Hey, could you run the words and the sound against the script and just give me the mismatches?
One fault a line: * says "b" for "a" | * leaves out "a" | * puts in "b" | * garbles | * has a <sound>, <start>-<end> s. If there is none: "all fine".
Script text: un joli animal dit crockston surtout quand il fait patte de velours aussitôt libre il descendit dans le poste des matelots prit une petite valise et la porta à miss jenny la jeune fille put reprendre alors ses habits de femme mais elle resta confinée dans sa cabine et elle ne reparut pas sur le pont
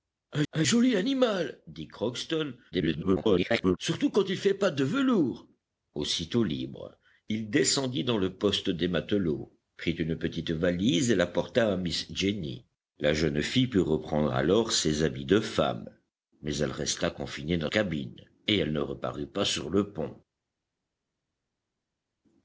* puts in "un"
* garbles
* leaves out "sa"